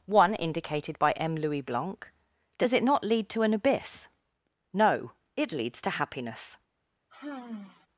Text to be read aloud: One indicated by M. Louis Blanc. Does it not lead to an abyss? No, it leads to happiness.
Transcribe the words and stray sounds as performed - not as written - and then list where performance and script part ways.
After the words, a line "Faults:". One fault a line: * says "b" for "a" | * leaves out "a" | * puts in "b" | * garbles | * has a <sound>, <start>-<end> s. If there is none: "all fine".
One indicated by M. Louis Blanc. Does it not lead to an abyss? No, it leads to happiness.
Faults:
* has a sigh, 7.1-7.9 s